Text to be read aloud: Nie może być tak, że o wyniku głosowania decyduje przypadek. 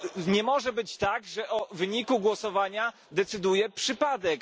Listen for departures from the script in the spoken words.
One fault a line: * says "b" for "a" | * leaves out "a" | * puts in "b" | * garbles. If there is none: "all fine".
all fine